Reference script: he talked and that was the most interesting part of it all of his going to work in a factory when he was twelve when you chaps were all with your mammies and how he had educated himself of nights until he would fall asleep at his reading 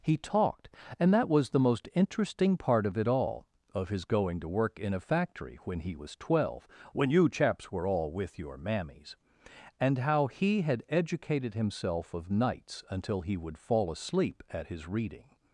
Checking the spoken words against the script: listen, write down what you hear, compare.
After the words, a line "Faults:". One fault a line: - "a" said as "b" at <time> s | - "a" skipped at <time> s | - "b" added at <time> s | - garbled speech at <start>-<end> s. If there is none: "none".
he talked and that was the most interesting part of it all of his going to work in a factory when he was twelve when you chaps were all with your mammies and how he had educated himself of nights until he would fall asleep at his reading
Faults:
none